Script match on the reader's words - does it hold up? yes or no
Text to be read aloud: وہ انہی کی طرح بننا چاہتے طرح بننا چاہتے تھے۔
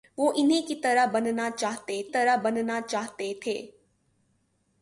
yes